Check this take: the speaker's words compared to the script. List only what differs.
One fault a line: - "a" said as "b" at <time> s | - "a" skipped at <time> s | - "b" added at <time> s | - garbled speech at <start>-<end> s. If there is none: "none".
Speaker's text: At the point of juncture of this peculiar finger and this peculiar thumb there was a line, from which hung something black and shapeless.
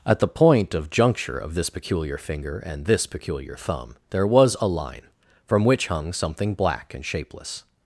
none